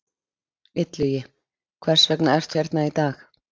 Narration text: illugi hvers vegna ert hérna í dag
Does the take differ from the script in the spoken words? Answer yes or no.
no